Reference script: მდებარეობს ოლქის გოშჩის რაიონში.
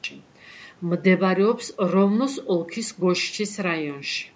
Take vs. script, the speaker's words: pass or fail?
fail